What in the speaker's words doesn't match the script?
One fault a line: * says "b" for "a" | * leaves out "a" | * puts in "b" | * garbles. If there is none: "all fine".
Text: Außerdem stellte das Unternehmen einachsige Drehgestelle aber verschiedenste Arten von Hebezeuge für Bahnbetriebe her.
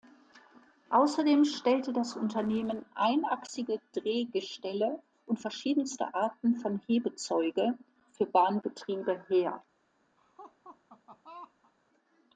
* says "und" for "aber"